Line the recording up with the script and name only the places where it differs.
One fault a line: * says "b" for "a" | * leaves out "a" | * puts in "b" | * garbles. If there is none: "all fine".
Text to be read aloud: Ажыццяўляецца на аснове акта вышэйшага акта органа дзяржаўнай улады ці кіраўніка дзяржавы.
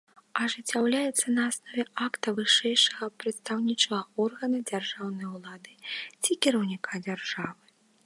* says "прадстаўнічага" for "акта"